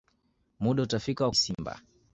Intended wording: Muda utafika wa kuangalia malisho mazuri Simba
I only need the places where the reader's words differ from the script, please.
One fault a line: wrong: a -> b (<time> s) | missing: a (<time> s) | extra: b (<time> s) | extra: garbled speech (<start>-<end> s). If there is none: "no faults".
missing: kuangalia malisho mazuri (1.3 s)